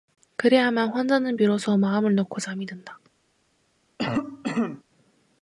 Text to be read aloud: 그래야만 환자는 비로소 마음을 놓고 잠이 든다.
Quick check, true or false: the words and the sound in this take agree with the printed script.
false